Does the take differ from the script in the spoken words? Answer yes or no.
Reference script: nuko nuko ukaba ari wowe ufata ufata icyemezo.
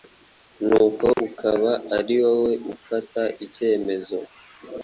yes